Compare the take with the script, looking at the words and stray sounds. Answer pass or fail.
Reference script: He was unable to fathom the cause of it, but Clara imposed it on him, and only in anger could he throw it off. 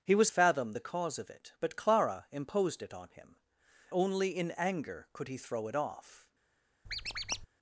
fail